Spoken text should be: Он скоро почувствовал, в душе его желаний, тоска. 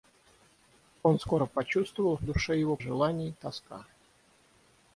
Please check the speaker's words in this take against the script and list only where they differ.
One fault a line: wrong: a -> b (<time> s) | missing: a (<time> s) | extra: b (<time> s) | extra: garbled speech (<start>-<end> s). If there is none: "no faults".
no faults